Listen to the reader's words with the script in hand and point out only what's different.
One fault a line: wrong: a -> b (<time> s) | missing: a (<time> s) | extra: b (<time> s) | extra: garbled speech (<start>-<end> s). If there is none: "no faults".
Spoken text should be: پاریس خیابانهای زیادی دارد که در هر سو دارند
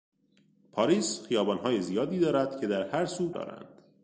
no faults